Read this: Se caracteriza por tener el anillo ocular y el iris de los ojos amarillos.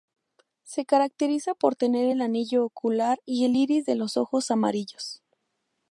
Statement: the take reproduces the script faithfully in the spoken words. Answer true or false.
true